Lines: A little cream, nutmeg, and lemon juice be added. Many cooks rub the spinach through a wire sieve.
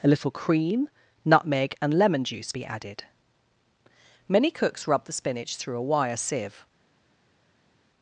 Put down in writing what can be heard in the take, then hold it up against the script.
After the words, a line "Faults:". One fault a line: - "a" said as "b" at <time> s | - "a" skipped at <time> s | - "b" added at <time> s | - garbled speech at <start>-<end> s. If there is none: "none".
A little cream, nutmeg, and lemon juice be added. Many cooks rub the spinach through a wire sieve.
Faults:
none